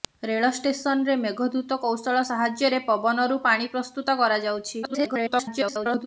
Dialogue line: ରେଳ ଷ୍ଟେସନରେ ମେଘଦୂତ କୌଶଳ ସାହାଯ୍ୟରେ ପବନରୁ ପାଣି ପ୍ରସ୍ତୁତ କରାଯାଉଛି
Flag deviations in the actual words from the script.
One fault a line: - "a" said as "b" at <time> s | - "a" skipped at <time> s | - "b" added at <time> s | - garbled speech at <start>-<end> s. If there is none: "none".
- garbled speech at 4.8-6.1 s